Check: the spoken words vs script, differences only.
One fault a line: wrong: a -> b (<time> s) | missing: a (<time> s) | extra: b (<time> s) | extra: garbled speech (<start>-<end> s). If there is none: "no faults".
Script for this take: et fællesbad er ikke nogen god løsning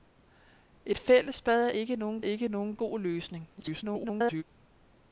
extra: ikke nogen (2.2 s)
extra: garbled speech (3.6-4.4 s)